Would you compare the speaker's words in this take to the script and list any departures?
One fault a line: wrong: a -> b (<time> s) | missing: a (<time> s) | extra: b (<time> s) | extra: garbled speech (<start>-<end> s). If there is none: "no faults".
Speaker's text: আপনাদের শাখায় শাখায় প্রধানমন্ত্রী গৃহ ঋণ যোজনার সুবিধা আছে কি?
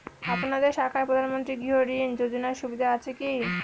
missing: শাখায় (1.1 s)